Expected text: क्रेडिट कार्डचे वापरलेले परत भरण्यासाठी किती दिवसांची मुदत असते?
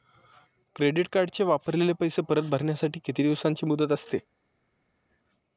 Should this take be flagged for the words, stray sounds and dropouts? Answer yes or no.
yes